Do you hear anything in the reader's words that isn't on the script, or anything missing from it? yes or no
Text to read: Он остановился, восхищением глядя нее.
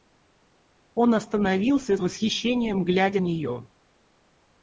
no